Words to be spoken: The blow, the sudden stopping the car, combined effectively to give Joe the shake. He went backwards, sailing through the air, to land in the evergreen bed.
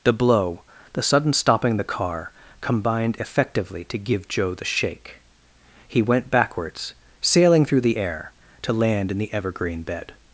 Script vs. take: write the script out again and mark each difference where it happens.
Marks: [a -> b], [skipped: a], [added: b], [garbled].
The blow, the sudden stopping the car, combined effectively to give Joe the shake. He went backwards, sailing through the air, to land in the evergreen bed.